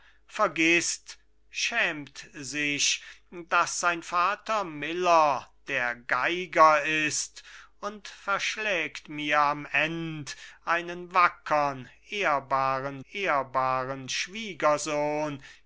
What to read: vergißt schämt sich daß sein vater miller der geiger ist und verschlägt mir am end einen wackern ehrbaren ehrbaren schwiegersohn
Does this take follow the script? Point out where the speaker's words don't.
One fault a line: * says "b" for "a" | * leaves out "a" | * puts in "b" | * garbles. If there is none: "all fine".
all fine